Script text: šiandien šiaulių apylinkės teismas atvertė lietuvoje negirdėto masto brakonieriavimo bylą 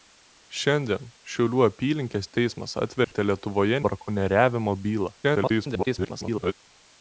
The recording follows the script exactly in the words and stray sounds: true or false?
false